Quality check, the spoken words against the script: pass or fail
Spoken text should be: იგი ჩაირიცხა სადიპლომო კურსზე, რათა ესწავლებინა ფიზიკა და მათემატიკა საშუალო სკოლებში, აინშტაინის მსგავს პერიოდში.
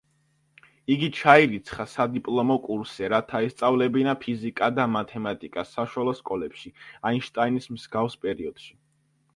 pass